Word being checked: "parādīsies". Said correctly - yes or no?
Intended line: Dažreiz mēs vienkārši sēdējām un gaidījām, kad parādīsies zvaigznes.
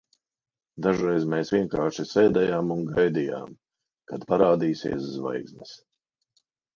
yes